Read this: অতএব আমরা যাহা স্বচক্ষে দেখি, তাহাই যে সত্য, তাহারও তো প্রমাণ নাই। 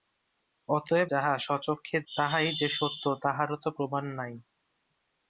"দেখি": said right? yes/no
no